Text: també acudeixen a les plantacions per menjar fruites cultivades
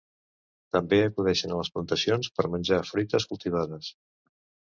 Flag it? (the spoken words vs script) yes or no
no